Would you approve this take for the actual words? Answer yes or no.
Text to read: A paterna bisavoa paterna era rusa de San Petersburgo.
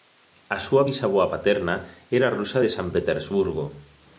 no